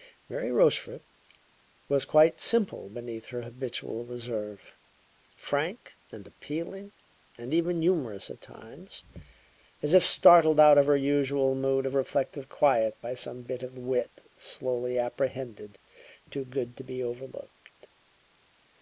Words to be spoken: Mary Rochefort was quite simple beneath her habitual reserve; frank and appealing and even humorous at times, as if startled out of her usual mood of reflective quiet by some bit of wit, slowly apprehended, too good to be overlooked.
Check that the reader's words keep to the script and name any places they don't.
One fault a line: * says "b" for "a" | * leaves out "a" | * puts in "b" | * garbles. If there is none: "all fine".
all fine